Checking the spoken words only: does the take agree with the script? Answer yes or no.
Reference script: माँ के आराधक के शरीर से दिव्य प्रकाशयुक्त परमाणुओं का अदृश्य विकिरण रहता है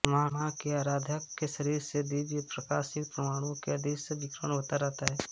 no